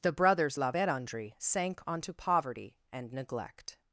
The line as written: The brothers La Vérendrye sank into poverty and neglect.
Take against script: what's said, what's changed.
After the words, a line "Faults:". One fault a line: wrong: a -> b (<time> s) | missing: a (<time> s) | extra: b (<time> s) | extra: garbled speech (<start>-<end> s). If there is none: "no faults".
The brothers La Vérendrye sank onto poverty and neglect.
Faults:
wrong: into -> onto (1.9 s)